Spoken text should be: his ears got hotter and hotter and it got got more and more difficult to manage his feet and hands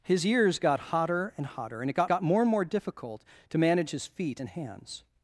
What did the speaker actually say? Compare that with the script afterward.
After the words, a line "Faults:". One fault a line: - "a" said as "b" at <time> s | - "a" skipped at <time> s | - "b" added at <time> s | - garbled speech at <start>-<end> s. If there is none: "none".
his ears got hotter and hotter and it got got more and more difficult to manage his feet and hands
Faults:
none